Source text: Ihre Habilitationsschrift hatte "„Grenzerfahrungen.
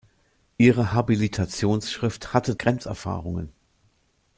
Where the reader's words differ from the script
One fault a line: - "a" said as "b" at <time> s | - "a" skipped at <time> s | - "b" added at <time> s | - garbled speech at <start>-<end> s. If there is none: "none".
none